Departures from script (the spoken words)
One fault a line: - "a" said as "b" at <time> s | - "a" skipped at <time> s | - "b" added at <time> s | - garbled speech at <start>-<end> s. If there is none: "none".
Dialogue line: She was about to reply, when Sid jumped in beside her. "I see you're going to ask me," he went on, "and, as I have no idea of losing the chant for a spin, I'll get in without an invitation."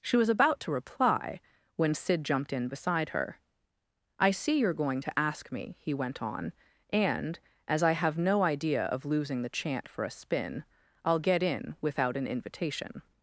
none